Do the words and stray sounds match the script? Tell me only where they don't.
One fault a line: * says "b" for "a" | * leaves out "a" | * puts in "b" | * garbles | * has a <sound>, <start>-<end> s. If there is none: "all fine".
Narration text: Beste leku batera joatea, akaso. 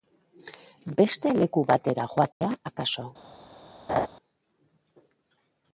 * has a dropout, 2.3-2.4 s
* has a laugh, 3.9-4.1 s